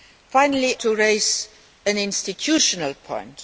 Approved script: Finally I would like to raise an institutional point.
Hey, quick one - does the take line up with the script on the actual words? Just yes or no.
no